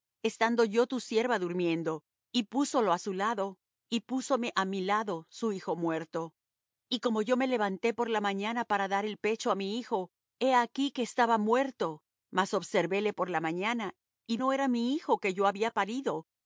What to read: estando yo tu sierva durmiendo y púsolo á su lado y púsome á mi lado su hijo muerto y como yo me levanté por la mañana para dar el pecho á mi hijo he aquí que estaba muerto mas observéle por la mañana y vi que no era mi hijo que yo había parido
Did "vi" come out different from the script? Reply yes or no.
yes